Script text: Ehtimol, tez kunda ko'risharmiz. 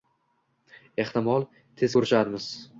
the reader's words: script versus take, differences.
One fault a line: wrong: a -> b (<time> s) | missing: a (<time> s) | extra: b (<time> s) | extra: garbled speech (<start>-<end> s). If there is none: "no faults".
missing: kunda (1.9 s)